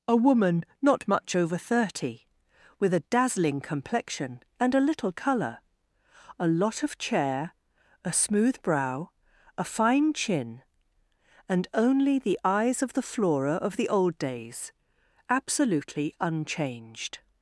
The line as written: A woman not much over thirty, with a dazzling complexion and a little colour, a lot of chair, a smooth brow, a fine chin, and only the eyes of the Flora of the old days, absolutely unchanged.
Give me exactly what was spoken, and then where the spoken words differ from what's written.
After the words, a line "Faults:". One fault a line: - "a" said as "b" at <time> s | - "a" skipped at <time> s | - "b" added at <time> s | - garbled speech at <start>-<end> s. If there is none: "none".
A woman not much over thirty, with a dazzling complexion and a little colour, a lot of chair, a smooth brow, a fine chin, and only the eyes of the Flora of the old days, absolutely unchanged.
Faults:
none